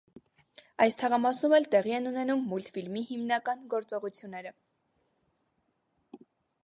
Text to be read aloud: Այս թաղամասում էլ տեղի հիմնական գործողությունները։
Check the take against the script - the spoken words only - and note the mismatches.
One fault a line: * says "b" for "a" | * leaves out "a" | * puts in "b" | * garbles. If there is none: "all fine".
* puts in "են ունենում մուլտֆիլմի"